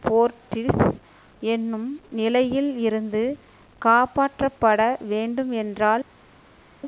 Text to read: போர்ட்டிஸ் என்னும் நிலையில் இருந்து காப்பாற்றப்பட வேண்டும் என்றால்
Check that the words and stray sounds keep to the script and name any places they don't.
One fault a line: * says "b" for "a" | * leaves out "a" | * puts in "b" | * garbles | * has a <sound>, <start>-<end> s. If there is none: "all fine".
all fine